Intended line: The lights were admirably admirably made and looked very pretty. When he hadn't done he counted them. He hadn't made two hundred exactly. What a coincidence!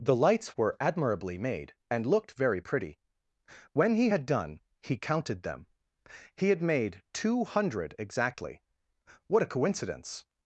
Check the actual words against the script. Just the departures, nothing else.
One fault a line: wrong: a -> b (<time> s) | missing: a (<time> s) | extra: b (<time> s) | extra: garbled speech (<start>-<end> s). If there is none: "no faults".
missing: admirably (1.4 s)
wrong: hadn't -> had (4.1 s)
wrong: hadn't -> had (6.5 s)